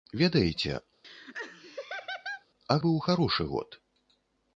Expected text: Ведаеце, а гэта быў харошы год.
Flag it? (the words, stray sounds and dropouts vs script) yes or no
yes